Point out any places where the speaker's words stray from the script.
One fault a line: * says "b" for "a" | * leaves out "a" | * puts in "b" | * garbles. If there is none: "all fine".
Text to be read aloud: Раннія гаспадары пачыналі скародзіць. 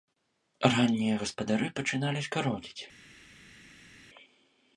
all fine